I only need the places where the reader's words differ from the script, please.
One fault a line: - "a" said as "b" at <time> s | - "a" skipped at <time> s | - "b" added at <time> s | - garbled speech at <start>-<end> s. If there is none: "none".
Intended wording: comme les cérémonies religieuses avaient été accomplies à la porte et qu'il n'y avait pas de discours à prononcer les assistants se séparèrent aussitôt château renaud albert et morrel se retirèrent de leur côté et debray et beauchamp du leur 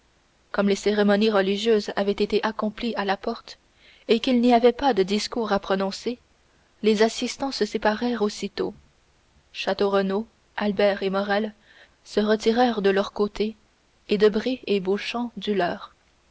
none